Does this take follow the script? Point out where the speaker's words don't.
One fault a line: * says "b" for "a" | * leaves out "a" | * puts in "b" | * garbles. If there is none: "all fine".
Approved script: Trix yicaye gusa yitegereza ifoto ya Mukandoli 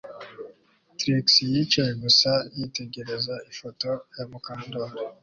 all fine